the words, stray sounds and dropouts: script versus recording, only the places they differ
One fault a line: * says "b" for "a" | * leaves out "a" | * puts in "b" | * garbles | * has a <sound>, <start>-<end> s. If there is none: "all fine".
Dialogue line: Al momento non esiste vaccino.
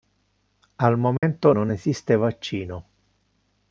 * has a dropout, 1.2-1.2 s